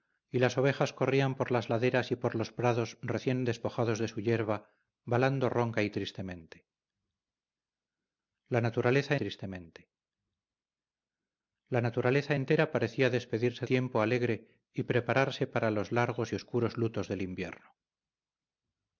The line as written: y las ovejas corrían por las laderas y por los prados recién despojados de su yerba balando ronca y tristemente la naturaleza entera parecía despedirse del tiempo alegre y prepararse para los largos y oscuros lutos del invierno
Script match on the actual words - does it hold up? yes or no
no